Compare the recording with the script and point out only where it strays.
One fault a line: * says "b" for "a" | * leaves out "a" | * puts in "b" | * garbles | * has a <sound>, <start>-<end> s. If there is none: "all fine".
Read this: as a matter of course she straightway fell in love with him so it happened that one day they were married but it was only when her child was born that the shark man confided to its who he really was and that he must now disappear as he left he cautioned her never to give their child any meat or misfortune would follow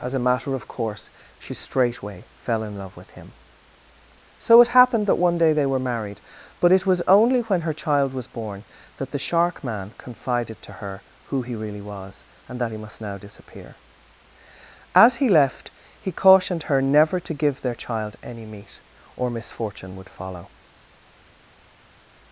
* says "her" for "its"